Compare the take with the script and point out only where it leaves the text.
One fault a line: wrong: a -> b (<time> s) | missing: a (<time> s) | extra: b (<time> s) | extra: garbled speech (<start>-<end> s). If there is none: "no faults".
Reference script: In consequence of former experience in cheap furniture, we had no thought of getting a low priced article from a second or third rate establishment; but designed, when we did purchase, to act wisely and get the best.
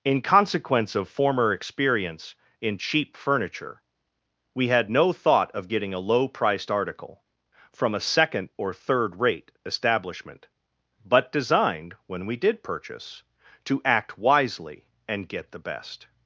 no faults